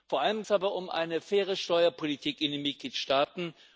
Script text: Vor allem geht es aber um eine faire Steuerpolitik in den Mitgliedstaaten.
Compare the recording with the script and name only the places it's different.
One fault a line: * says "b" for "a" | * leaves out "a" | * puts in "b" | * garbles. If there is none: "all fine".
* leaves out "geht"